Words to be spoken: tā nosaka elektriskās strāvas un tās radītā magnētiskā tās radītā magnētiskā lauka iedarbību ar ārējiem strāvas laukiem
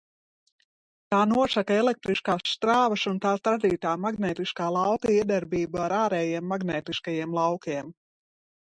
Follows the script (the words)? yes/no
no